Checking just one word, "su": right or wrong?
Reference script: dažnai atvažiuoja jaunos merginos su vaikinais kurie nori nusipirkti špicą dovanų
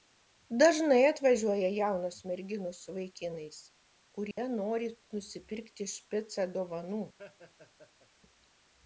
right